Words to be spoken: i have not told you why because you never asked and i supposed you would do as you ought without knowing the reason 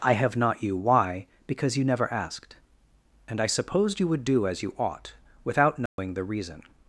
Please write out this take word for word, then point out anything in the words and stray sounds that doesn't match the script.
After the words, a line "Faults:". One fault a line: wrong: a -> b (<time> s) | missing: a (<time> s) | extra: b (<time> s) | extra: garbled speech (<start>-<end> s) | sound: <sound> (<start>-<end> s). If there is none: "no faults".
i have not you why because you never asked and i supposed you would do as you ought without knowing the reason
Faults:
missing: told (0.6 s)
sound: dropout (5.9-6.0 s)